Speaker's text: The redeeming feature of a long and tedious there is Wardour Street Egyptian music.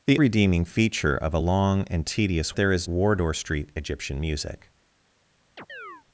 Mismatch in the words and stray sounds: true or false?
true